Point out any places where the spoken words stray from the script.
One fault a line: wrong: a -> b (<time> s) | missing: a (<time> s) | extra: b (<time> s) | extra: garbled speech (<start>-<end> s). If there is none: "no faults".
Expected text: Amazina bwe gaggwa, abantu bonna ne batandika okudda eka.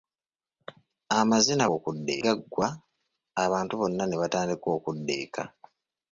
wrong: bwe -> okudda (1.8 s)